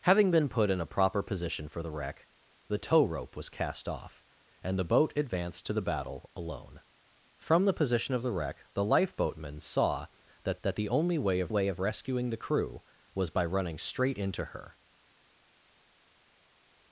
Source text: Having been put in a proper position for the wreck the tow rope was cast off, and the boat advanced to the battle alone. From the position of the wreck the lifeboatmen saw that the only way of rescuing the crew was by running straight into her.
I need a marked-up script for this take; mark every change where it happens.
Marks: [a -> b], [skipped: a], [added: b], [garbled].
Having been put in a proper position for the wreck the tow rope was cast off, and the boat advanced to the battle alone. From the position of the wreck the lifeboatmen saw that [added: that] the only way of [added: way of] rescuing the crew was by running straight into her.